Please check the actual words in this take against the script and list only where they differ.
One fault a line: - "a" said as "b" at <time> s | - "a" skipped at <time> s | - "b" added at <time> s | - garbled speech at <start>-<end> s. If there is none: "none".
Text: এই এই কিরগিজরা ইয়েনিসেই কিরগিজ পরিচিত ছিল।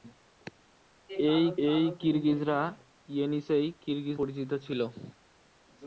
none